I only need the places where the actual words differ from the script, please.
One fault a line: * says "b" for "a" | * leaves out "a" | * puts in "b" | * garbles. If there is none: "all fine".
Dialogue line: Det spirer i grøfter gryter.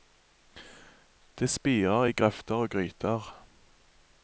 * puts in "og"